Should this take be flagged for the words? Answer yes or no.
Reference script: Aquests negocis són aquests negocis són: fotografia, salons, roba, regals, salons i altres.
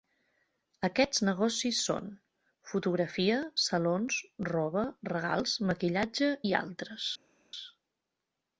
yes